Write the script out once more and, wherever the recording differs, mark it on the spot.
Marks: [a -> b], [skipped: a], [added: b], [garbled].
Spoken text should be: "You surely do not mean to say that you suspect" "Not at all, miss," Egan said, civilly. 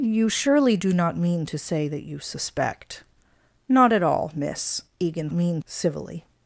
"You surely do not mean to say that you suspect" "Not at all, miss," Egan [said, -> mean] civilly.